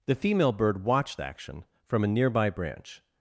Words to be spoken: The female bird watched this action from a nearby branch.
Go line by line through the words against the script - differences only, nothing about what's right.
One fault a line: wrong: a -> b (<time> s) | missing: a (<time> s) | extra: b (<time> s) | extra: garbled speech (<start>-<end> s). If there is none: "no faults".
missing: this (1.2 s)